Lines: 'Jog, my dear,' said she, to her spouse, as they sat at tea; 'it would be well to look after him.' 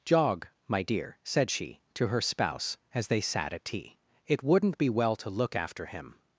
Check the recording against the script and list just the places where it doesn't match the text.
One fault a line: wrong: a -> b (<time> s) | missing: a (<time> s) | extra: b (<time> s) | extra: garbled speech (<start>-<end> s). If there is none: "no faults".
wrong: would -> wouldn't (4.4 s)